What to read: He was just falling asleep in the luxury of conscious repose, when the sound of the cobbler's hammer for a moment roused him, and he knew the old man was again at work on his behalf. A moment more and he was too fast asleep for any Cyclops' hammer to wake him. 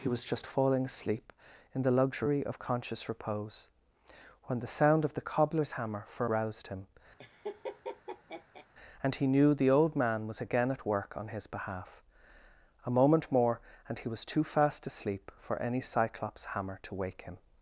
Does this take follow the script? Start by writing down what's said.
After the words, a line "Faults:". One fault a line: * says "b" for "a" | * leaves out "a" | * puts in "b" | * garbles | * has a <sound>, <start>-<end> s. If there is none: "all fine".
He was just falling asleep in the luxury of conscious repose, when the sound of the cobbler's hammer for roused him, and he knew the old man was again at work on his behalf. A moment more and he was too fast asleep for any Cyclops' hammer to wake him.
Faults:
* leaves out "a moment"
* has a laugh, 7.2-8.7 s